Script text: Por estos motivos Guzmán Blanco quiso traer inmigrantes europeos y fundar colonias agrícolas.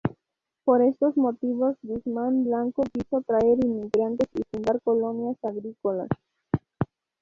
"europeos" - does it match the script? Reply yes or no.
no